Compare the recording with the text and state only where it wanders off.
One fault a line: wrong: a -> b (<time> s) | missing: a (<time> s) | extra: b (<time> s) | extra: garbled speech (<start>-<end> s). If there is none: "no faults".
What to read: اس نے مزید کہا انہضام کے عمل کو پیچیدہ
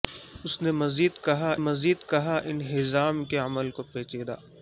extra: مزید کہا (1.6 s)